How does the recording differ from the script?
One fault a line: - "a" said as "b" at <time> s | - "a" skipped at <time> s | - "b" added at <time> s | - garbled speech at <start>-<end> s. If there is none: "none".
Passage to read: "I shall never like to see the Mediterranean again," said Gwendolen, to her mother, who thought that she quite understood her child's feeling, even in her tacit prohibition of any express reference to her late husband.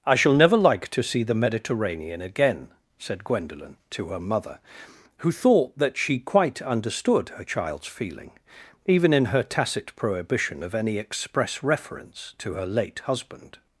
none